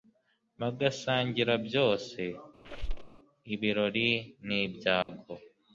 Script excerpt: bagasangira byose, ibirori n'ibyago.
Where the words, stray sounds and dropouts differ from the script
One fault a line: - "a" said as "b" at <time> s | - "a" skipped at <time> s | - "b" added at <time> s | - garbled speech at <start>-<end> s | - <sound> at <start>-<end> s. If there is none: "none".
- squeak at 2.6-3.2 s
- dropout at 5.0-5.1 s